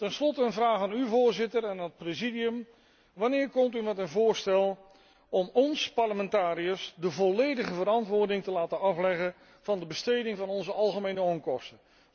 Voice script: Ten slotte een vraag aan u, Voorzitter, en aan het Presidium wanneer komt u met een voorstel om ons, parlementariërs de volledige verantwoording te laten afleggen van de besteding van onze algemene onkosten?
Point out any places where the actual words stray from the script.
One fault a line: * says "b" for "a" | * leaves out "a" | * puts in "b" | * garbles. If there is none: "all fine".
all fine